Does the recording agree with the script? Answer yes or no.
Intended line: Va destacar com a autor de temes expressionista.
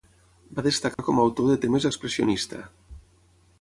yes